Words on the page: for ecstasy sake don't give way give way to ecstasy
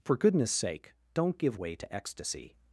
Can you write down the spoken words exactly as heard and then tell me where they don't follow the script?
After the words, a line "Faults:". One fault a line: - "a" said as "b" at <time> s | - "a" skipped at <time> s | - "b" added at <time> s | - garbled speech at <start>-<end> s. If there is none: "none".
for goodness sake don't give way to ecstasy
Faults:
- "ecstasy" said as "goodness" at 0.2 s
- "give way" skipped at 1.7 s